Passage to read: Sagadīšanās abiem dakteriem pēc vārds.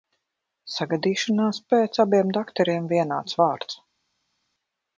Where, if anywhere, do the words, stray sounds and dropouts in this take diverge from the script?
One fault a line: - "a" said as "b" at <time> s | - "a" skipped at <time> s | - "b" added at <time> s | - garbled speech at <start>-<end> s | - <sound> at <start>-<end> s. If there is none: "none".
- "pēc" added at 1.7 s
- "pēc" said as "vienāds" at 3.0 s